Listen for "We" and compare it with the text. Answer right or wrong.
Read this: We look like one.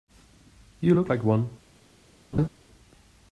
wrong